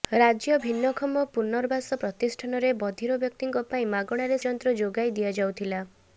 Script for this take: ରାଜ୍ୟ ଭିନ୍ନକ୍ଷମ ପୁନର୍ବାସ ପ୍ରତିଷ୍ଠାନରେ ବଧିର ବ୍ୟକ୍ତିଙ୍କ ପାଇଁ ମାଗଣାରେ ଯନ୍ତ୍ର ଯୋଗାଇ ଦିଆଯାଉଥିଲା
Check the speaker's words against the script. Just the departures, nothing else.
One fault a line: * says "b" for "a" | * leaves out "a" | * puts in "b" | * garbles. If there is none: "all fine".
all fine